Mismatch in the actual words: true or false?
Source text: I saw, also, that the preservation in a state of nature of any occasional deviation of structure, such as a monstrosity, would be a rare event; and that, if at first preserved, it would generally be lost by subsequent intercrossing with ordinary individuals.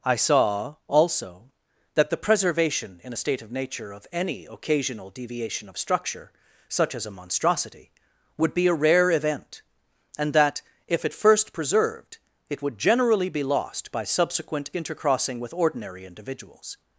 false